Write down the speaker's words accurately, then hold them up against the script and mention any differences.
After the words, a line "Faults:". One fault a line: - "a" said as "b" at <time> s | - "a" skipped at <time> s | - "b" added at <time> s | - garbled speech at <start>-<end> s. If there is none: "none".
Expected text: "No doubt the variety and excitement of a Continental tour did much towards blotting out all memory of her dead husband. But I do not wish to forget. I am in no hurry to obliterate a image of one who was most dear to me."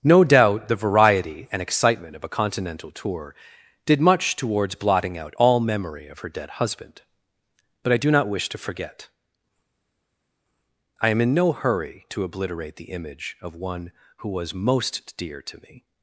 "No doubt the variety and excitement of a Continental tour did much towards blotting out all memory of her dead husband. But I do not wish to forget. I am in no hurry to obliterate the image of one who was most dear to me."
Faults:
- "a" said as "the" at 12.8 s